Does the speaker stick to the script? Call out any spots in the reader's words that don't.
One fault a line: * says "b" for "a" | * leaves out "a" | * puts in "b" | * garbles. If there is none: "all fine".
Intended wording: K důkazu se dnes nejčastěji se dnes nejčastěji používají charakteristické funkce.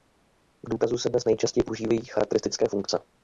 * leaves out "se dnes nejčastěji"